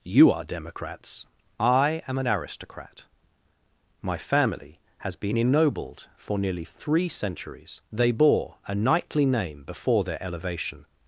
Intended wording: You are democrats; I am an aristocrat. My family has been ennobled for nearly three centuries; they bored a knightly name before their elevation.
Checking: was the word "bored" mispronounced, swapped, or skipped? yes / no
yes